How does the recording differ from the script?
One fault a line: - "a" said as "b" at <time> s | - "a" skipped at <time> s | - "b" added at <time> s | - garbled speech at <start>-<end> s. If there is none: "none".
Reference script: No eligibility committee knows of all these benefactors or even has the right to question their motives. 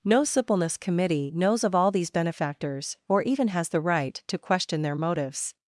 - "eligibility" said as "suppleness" at 0.2 s